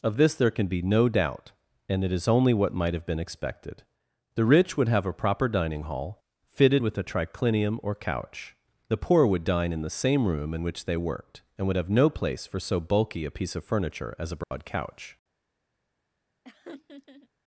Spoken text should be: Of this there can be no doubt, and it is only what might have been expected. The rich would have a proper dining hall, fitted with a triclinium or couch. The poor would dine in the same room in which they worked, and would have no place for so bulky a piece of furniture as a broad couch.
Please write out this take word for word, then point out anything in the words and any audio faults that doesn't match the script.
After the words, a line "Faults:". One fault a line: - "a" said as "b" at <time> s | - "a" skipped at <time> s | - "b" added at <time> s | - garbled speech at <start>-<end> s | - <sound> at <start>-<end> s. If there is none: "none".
Of this there can be no doubt, and it is only what might have been expected. The rich would have a proper dining hall, fitted with a triclinium or couch. The poor would dine in the same room in which they worked, and would have no place for so bulky a piece of furniture as a broad couch.
Faults:
- dropout at 14.4-14.5 s
- laugh at 16.4-17.3 s